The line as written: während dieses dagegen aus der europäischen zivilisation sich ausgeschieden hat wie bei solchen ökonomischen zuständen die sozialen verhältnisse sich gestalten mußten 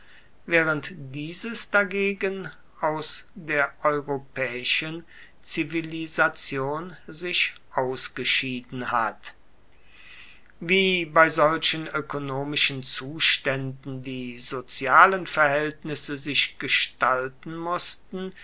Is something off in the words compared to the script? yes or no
no